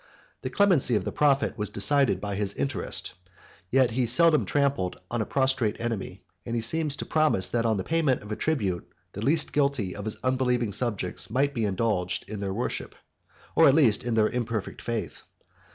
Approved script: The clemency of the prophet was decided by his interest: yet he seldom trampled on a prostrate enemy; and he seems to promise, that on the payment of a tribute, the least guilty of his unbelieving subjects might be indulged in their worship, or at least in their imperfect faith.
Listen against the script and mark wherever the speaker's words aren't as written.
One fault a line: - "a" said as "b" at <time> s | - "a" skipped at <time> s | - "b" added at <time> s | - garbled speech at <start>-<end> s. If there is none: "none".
none